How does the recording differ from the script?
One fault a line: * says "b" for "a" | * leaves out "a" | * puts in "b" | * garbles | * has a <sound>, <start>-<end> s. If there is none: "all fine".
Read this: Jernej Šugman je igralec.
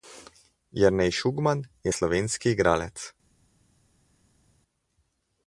* puts in "slovenski"